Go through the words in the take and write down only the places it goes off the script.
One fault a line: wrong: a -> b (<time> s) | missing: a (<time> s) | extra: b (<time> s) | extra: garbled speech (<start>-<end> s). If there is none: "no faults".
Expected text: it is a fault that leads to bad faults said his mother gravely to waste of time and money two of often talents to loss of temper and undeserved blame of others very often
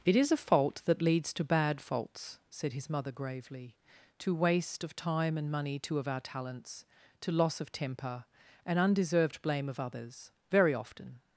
wrong: often -> our (6.1 s)